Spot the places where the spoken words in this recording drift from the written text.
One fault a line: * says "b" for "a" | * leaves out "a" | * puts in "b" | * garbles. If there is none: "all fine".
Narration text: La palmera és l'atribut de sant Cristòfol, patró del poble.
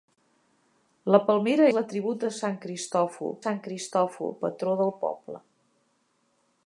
* leaves out "és"
* puts in "sant Cristòfol"